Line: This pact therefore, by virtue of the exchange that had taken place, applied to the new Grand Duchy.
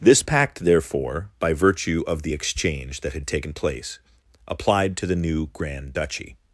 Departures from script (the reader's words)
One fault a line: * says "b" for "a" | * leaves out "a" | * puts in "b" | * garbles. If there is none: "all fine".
all fine